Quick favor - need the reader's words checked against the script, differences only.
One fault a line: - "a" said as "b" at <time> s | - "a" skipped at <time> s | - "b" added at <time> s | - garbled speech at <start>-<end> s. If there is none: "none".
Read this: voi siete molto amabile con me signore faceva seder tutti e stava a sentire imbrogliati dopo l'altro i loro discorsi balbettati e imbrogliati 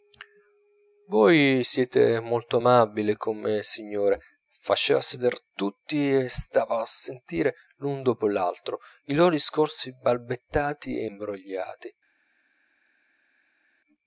- "imbrogliati" said as "l'un" at 7.8 s